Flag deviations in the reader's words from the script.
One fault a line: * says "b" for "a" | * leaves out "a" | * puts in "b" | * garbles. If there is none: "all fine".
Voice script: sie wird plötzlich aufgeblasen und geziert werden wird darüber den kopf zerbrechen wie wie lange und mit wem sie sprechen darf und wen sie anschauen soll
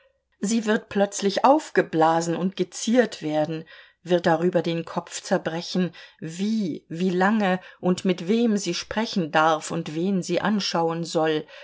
all fine